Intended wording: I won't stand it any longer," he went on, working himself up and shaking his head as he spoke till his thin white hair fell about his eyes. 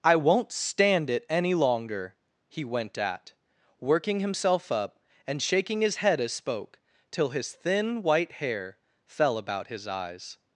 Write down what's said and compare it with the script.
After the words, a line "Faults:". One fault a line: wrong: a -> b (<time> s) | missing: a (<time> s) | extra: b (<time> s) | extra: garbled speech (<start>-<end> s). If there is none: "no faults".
I won't stand it any longer," he went at, working himself up and shaking his head as spoke till his thin white hair fell about his eyes.
Faults:
wrong: on -> at (3.0 s)
missing: he (6.3 s)